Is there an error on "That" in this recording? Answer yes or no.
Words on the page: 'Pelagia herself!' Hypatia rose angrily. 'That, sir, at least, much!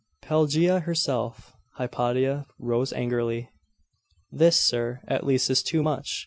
yes